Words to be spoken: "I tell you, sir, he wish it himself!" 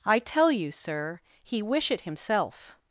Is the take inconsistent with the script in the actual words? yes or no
no